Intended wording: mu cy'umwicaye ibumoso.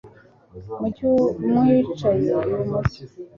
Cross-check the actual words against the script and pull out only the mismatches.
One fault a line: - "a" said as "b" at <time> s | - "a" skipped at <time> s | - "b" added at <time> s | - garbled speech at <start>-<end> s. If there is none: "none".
none